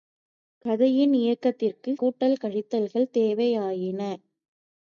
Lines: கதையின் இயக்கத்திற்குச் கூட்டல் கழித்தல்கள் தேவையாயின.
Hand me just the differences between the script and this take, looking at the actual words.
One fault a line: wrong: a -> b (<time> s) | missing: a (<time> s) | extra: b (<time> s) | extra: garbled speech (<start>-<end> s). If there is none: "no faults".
no faults